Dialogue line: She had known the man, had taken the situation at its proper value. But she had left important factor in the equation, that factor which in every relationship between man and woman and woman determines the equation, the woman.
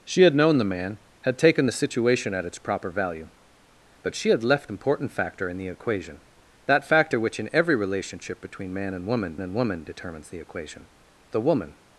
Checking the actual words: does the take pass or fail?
pass